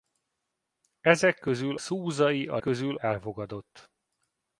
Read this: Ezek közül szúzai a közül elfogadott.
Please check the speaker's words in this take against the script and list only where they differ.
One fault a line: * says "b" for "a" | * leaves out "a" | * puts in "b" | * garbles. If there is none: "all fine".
all fine